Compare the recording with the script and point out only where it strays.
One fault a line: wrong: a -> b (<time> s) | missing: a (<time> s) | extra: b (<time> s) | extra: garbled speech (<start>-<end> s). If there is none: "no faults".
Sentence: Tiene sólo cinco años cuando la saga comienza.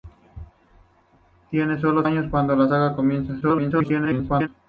missing: cinco (2.0 s)
extra: garbled speech (3.4-4.5 s)